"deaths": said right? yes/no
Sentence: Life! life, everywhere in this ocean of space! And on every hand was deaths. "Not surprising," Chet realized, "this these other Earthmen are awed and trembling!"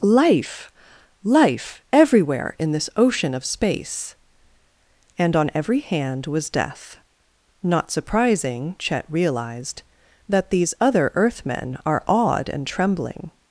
no